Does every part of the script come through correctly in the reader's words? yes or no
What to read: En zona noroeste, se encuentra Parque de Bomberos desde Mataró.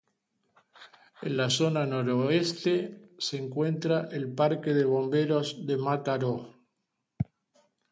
no